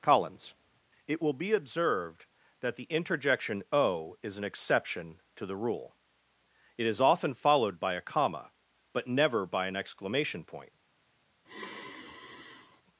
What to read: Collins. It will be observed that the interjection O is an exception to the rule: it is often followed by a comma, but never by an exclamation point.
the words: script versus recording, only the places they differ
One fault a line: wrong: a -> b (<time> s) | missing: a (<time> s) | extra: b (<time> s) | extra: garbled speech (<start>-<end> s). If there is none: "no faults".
no faults